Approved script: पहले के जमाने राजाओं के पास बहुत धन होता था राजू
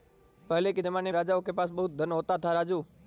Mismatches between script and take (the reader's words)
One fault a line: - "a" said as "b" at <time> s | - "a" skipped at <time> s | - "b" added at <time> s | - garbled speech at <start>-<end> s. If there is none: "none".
none